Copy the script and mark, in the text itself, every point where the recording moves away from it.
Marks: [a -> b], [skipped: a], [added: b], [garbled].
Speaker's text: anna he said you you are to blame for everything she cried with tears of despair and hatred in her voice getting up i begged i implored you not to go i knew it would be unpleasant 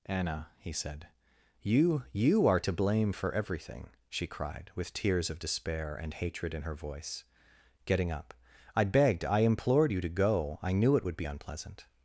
anna he said you you are to blame for everything she cried with tears of despair and hatred in her voice getting up i begged i implored you [skipped: not] to go i knew it would be unpleasant